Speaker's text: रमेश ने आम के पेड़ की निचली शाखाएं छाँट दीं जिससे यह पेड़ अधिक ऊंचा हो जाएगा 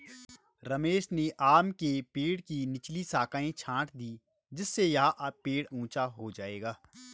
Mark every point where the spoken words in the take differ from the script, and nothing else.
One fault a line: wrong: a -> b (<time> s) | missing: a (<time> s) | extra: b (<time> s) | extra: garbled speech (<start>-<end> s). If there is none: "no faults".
missing: अधिक (5.7 s)